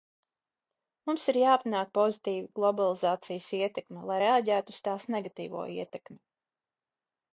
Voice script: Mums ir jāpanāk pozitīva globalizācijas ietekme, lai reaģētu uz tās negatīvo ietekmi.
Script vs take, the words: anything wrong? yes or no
no